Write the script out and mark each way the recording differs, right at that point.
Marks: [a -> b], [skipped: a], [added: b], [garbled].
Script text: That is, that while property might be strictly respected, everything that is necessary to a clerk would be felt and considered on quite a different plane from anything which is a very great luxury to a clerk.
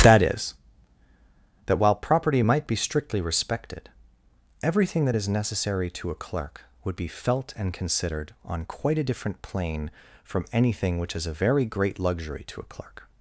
That is, that while property might be strictly respected, everything that is necessary to a clerk would be felt and considered on quite a different plane from anything which is a very great luxury to a clerk.